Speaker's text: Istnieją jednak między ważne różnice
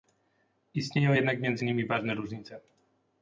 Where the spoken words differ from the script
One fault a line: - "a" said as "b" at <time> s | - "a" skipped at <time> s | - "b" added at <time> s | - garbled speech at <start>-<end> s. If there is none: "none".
- "nimi" added at 1.6 s